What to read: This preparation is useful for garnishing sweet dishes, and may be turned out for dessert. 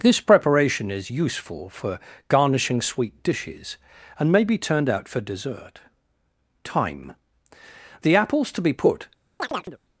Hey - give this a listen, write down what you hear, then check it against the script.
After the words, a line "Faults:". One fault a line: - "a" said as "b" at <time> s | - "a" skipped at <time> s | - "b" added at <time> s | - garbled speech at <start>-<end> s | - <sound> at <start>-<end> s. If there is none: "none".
This preparation is useful for garnishing sweet dishes, and may be turned out for dessert. Time. The apples to be put
Faults:
- "Time The apples to be put" added at 6.6 s
- chirp at 9.4-9.8 s